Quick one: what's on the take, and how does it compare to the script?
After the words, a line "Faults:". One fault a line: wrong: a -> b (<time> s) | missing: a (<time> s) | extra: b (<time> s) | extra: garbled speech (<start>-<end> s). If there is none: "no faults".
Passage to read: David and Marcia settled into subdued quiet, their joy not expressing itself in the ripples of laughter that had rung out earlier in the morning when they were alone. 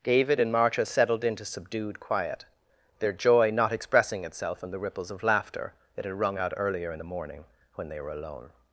David and Marcia settled into subdued quiet, their joy not expressing itself in the ripples of laughter that had rung out earlier in the morning when they were alone.
Faults:
no faults